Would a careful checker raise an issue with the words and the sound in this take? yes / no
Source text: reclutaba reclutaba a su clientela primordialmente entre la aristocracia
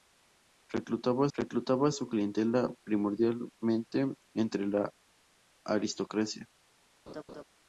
yes